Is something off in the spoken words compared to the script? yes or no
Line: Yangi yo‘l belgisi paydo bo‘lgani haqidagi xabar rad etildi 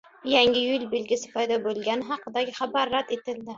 no